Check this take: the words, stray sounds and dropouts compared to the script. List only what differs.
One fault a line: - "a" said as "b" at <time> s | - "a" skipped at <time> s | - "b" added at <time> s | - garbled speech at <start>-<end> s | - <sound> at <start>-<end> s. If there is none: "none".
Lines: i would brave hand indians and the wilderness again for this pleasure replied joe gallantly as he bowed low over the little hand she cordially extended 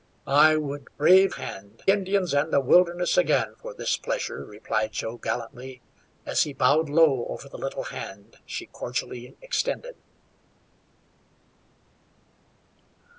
none